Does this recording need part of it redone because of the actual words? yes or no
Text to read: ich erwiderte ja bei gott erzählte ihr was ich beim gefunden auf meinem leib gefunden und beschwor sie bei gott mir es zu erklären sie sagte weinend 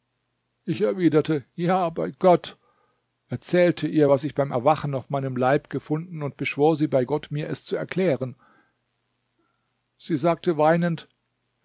yes